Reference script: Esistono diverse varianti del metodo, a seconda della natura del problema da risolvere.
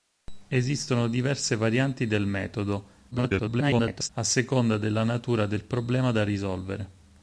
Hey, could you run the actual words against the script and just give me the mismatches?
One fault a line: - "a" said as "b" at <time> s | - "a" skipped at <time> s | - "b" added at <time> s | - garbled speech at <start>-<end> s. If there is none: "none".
- garbled speech at 3.1-4.1 s